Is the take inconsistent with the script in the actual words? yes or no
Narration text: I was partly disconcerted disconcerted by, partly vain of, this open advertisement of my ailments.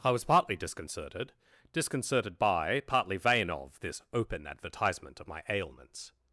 no